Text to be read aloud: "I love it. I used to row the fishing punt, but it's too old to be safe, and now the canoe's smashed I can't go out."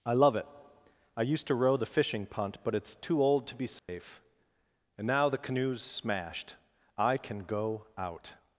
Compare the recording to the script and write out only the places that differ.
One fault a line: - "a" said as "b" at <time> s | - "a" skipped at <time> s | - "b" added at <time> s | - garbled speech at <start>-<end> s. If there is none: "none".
- "can't" said as "can" at 7.2 s